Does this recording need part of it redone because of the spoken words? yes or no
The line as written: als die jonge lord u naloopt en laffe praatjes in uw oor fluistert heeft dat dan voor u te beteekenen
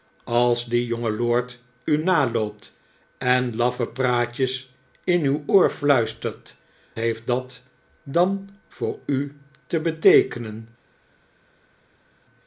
no